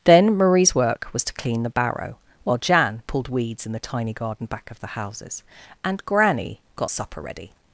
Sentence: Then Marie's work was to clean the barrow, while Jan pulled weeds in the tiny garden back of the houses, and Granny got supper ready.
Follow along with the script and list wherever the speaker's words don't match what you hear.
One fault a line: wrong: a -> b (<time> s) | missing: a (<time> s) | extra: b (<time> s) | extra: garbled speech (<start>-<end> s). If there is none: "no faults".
no faults